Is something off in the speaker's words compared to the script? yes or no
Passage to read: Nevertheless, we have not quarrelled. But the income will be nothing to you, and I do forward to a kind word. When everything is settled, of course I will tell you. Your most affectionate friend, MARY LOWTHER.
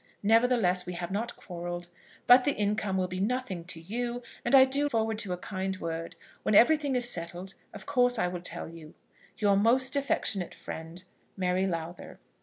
no